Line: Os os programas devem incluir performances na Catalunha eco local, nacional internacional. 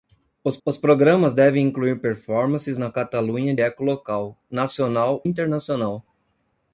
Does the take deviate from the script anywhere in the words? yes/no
no